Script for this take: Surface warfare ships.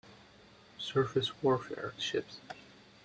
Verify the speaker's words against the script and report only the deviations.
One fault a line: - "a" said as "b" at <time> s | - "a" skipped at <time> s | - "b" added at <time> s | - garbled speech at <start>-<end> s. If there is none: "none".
none